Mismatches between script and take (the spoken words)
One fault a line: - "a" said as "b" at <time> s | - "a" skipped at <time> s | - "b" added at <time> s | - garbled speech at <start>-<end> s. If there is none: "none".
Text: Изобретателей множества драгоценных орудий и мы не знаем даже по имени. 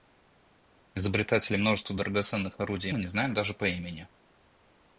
none